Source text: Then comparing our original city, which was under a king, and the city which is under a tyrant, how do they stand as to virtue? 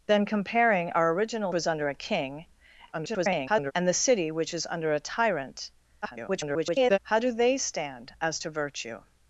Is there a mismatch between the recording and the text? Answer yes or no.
yes